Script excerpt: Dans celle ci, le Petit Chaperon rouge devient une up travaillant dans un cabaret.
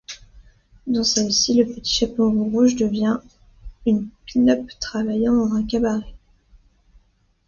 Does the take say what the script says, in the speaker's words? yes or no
no